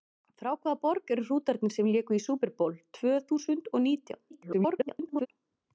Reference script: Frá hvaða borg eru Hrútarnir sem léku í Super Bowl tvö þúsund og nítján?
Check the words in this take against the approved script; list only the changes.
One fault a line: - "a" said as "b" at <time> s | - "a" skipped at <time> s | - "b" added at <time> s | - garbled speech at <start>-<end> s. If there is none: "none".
- garbled speech at 4.3-5.3 s